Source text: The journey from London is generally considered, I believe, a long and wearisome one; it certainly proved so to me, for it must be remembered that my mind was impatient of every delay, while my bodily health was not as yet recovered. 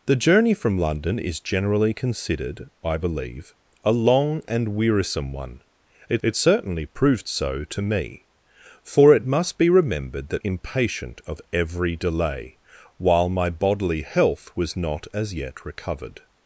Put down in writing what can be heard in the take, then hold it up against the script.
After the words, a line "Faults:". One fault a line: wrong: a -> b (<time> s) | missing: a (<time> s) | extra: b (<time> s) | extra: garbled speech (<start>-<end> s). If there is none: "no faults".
The journey from London is generally considered, I believe, a long and wearisome one; it it certainly proved so to me, for it must be remembered that impatient of every delay, while my bodily health was not as yet recovered.
Faults:
extra: it (6.2 s)
missing: my mind was (10.4 s)